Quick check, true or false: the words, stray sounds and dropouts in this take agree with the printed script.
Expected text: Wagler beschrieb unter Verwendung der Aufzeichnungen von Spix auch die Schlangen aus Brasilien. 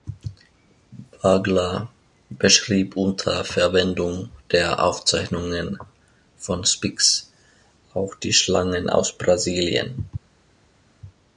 true